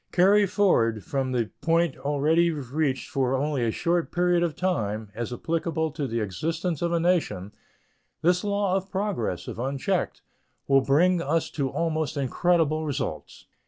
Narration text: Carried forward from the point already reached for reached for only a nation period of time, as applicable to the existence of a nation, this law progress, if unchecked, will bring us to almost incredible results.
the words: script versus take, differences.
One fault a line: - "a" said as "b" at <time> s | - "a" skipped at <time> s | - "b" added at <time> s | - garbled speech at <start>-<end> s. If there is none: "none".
- "reached for" skipped at 3.4 s
- "nation" said as "short" at 3.7 s
- "of" added at 8.8 s